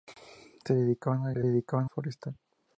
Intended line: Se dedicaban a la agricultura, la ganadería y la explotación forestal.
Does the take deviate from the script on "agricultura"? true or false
true